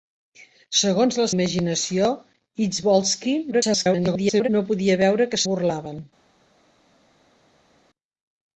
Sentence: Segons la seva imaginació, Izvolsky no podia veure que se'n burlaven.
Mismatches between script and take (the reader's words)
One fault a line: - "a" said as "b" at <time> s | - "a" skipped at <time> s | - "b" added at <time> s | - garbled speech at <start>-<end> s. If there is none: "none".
- "seva" skipped at 1.3 s
- garbled speech at 3.5-4.5 s
- "se'n" skipped at 5.4 s